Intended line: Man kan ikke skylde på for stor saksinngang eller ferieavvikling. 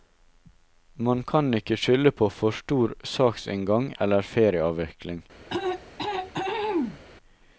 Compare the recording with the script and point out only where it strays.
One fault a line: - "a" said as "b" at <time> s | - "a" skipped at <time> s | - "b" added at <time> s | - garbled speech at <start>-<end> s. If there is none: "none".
none